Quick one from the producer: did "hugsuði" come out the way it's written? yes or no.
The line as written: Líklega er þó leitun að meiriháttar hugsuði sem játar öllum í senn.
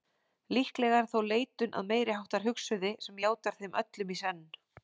yes